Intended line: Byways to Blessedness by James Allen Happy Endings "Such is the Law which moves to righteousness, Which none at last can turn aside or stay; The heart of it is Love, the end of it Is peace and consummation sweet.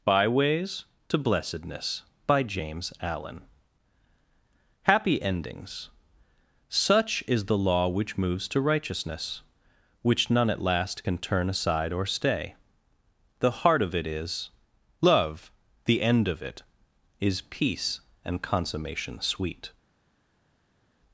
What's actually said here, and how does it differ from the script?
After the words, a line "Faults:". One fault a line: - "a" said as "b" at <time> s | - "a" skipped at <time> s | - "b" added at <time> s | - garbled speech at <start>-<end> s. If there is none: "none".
Byways to Blessedness by James Allen Happy Endings "Such is the Law which moves to righteousness, Which none at last can turn aside or stay; The heart of it is Love, the end of it Is peace and consummation sweet.
Faults:
none